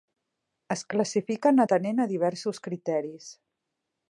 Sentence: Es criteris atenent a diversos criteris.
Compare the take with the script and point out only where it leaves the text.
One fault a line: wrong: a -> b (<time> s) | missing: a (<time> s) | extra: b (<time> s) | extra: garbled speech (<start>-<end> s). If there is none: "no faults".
wrong: criteris -> classifiquen (0.9 s)